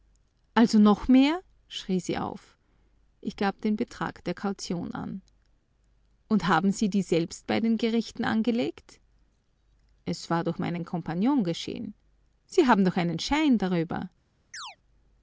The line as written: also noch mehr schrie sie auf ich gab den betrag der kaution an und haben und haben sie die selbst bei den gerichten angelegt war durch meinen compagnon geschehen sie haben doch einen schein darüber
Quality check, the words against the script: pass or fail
fail